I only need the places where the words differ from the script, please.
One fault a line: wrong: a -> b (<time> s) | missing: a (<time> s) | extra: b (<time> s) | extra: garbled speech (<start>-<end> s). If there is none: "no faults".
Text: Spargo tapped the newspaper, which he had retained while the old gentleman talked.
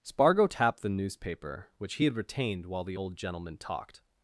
no faults